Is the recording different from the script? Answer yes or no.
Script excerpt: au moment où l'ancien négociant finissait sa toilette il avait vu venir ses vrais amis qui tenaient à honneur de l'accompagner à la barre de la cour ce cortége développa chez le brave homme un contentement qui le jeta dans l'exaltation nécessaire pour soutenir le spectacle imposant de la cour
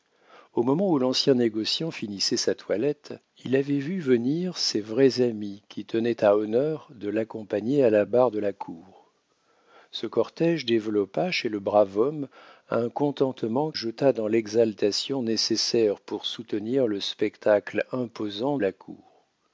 yes